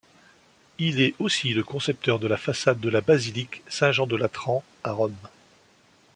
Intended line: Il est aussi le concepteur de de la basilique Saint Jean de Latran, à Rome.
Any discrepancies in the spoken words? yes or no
yes